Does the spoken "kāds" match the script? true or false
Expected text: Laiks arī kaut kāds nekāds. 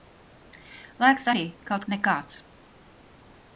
false